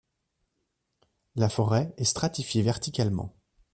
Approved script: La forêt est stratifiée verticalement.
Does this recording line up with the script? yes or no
yes